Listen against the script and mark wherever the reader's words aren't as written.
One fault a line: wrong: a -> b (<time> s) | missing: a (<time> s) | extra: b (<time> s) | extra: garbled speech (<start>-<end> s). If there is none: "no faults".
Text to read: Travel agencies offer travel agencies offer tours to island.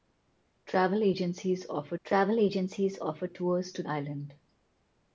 no faults